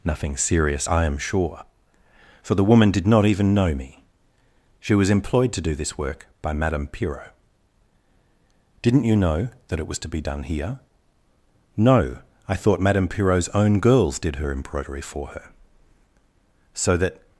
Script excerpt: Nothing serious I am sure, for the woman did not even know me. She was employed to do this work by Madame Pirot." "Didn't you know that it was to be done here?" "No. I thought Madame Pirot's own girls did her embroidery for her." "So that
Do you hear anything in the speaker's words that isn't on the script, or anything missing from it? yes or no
no